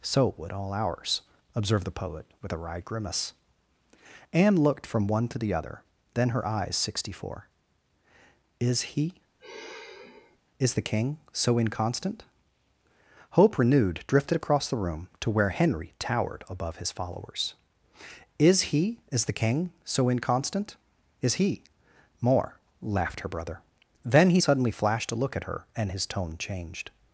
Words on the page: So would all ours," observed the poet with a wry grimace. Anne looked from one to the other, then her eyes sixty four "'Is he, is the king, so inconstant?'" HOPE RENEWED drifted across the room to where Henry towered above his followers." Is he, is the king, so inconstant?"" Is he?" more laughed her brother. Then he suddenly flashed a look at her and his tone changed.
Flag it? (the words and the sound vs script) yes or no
yes